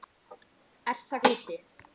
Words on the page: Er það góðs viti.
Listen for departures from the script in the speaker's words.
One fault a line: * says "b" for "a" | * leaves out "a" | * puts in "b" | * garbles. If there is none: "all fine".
* leaves out "góðs"